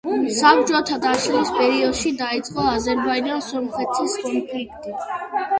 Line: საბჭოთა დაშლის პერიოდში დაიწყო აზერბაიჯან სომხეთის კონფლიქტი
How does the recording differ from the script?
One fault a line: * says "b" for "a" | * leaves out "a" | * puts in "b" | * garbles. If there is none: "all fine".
all fine